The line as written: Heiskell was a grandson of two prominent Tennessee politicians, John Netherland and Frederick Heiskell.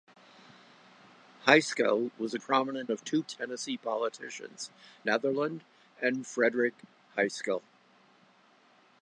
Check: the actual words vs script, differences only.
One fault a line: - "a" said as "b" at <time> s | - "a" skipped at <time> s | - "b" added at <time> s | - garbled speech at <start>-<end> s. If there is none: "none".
- "grandson" said as "prominent" at 2.4 s
- "prominent" skipped at 3.2 s
- "John" skipped at 4.7 s